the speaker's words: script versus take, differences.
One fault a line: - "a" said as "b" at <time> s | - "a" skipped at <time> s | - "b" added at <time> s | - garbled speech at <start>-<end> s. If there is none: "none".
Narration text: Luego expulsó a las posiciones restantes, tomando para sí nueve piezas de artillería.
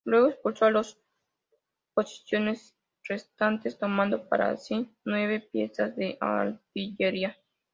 none